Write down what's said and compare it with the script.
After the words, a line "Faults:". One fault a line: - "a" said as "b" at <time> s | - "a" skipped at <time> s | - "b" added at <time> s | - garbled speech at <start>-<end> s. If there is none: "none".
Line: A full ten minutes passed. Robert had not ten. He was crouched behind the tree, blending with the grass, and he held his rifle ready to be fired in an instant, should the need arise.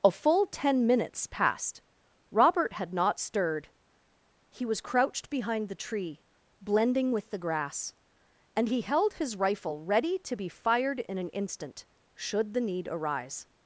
A full ten minutes passed. Robert had not stirred. He was crouched behind the tree, blending with the grass, and he held his rifle ready to be fired in an instant, should the need arise.
Faults:
- "ten" said as "stirred" at 3.2 s